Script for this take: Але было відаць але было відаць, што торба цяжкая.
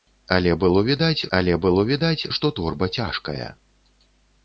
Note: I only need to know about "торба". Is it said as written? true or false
true